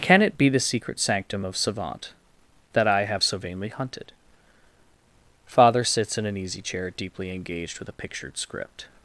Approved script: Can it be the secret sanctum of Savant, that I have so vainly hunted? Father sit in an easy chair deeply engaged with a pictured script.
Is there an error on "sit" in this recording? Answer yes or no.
yes